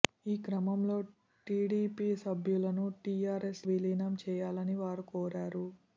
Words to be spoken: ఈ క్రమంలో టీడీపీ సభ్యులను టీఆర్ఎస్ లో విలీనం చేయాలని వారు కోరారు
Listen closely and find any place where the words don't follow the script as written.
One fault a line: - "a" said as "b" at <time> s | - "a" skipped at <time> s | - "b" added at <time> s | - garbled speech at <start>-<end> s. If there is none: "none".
- "లో" skipped at 3.6 s